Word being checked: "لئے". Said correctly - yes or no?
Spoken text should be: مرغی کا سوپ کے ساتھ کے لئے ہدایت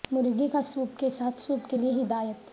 yes